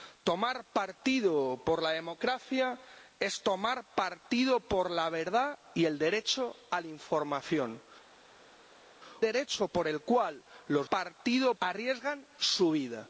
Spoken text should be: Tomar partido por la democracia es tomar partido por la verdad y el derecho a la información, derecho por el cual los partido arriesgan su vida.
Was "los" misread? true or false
false